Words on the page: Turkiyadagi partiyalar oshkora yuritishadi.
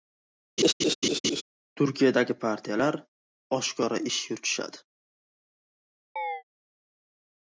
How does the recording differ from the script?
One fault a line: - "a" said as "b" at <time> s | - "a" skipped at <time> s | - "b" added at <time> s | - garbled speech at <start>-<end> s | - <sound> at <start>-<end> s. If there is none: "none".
- laugh at 0.6-1.4 s
- "ish" added at 4.1 s
- chirp at 6.2-6.4 s